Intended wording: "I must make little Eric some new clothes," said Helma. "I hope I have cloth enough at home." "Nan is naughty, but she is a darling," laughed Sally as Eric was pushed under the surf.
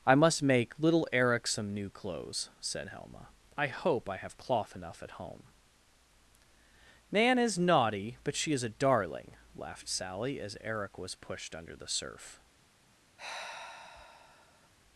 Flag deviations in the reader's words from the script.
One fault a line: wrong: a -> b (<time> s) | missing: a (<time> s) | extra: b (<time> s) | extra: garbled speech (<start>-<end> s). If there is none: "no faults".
no faults